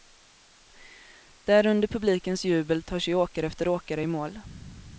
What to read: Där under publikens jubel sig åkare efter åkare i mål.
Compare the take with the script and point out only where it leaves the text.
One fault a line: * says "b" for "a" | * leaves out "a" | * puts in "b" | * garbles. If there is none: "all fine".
* puts in "tar"